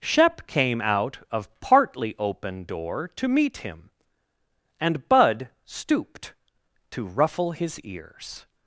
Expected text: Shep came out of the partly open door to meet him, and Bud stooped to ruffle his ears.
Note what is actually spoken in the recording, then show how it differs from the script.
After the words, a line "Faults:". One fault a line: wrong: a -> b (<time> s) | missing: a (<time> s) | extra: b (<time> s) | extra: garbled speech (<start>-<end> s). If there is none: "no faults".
Shep came out of partly open door to meet him, and Bud stooped to ruffle his ears.
Faults:
missing: the (1.5 s)